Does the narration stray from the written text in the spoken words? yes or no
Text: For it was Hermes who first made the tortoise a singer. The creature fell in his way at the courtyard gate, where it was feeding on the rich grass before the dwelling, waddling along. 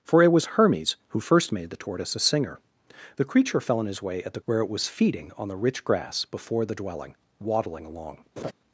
yes